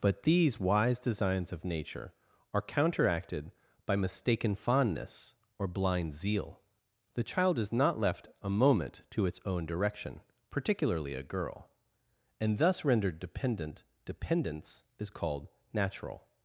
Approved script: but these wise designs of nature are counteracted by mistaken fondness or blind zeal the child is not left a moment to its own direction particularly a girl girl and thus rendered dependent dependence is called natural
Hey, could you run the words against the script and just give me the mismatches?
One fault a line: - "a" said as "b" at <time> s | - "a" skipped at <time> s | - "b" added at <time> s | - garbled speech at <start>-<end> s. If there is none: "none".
- "girl" skipped at 11.7 s